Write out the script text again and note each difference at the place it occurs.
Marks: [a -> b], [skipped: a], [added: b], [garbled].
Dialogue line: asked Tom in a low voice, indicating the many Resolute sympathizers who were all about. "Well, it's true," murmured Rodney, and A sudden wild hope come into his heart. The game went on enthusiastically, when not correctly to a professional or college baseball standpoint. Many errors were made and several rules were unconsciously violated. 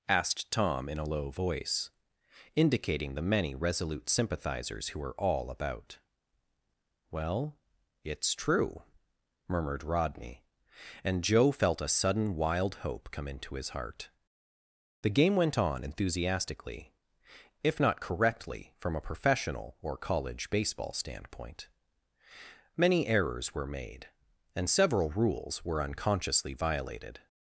asked Tom in a low voice, indicating the many Resolute sympathizers who were all about. "Well, it's true," murmured Rodney, and [added: Joe felt] A sudden wild hope come into his heart. The game went on enthusiastically, [when -> if] not correctly [to -> from] a professional or college baseball standpoint. Many errors were made and several rules were unconsciously violated.